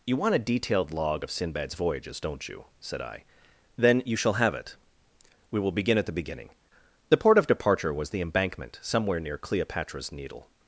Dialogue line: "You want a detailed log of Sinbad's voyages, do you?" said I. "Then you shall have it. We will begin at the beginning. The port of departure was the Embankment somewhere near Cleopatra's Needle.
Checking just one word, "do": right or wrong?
wrong